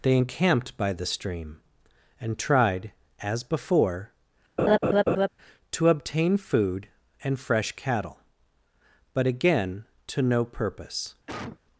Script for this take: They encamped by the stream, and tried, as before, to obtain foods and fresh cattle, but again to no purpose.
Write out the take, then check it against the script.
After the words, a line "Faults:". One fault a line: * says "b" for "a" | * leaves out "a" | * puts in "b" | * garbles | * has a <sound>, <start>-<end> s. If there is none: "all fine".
They encamped by the stream, and tried, as before, to obtain food and fresh cattle, but again to no purpose.
Faults:
* has a laugh, 4.6-5.3 s
* says "food" for "foods"
* has a cough, 11.3-11.6 s